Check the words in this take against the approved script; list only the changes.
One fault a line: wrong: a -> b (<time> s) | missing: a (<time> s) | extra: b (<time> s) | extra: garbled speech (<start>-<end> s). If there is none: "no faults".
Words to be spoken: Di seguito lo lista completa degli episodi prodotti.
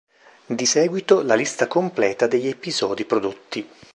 wrong: lo -> la (1.2 s)